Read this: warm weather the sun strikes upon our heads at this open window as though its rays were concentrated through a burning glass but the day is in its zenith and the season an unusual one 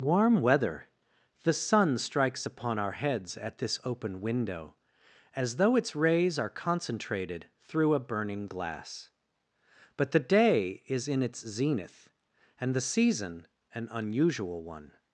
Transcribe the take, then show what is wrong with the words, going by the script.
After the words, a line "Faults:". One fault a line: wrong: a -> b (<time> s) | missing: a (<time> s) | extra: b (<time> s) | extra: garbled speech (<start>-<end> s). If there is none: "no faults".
warm weather the sun strikes upon our heads at this open window as though its rays are concentrated through a burning glass but the day is in its zenith and the season an unusual one
Faults:
wrong: were -> are (6.4 s)